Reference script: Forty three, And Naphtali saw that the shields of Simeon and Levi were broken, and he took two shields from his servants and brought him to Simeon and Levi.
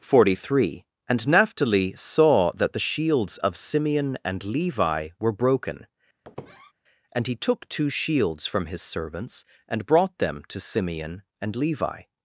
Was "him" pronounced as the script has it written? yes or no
no